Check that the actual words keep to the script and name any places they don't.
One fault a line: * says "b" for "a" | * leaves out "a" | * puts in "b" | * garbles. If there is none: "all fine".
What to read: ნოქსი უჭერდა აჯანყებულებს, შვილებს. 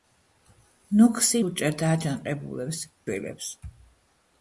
all fine